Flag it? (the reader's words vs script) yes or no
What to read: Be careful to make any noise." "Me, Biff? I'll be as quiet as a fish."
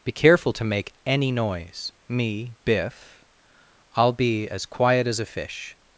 no